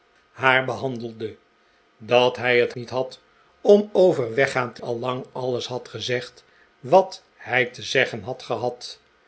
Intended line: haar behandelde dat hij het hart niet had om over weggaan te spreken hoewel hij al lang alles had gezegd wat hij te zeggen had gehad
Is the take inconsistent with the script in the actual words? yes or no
yes